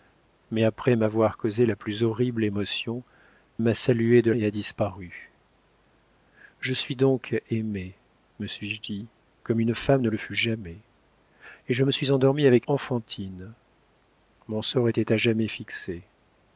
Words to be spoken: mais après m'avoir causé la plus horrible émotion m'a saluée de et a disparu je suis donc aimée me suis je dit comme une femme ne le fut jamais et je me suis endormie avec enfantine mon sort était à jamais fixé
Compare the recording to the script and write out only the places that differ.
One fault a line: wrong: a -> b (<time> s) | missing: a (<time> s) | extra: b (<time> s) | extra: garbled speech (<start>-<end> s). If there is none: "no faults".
no faults